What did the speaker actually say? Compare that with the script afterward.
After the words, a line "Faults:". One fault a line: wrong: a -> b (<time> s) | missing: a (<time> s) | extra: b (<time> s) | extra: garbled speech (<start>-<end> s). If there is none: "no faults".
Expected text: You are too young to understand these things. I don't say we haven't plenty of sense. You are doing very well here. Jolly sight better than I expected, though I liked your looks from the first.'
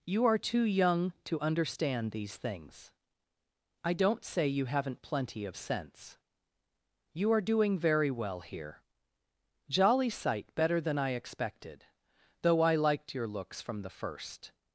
You are too young to understand these things. I don't say you haven't plenty of sense. You are doing very well here. Jolly sight better than I expected, though I liked your looks from the first.'
Faults:
wrong: we -> you (4.5 s)